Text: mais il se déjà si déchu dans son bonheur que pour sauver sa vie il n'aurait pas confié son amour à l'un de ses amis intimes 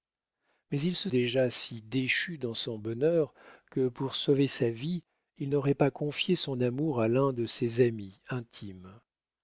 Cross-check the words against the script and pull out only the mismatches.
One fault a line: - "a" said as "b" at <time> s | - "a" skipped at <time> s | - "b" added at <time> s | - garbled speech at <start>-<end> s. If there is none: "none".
none